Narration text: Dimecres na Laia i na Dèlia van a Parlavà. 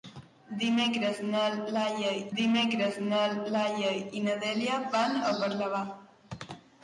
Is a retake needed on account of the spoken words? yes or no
yes